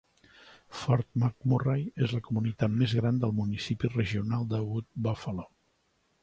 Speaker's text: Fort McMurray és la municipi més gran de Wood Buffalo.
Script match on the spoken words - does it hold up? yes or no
no